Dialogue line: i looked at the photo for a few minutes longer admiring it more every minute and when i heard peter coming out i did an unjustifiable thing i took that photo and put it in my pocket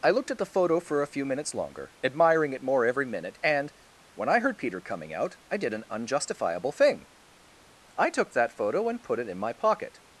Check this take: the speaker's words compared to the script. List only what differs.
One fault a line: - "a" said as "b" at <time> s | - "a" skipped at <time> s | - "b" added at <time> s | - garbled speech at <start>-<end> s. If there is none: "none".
none